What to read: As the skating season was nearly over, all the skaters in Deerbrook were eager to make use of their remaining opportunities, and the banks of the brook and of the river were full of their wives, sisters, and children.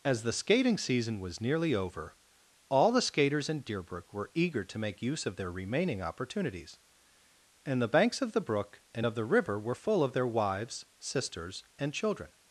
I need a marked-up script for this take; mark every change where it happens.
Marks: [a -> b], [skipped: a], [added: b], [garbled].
As the skating season was nearly over, all the skaters in Deerbrook were eager to make use of their remaining opportunities, and the banks of the brook and of the river were full of their wives, sisters, and children.